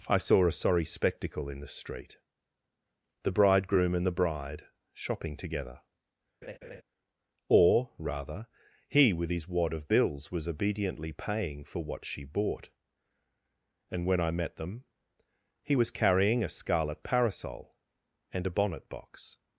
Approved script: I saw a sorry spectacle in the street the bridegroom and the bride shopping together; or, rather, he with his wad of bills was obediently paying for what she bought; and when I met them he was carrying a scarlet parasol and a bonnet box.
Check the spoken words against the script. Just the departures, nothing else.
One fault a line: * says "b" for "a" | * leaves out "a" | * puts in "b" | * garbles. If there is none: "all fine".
all fine